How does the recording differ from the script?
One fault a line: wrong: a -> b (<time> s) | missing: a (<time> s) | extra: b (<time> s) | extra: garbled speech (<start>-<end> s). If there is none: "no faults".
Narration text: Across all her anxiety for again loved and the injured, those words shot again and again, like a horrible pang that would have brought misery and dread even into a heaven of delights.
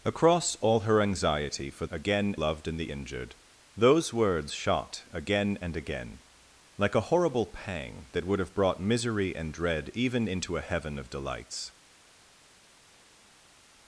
no faults